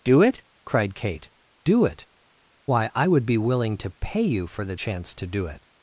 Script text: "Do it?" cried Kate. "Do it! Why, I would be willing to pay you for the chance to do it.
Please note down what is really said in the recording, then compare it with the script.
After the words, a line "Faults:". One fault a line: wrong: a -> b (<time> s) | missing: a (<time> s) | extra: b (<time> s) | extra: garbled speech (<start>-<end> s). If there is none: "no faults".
"Do it?" cried Kate. "Do it! Why, I would be willing to pay you for the chance to do it.
Faults:
no faults